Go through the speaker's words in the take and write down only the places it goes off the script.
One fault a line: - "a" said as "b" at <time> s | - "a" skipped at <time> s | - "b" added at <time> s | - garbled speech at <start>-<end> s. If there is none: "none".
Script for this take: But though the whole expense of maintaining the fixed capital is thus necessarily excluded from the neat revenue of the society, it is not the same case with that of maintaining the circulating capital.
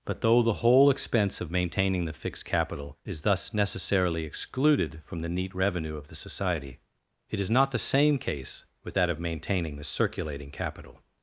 none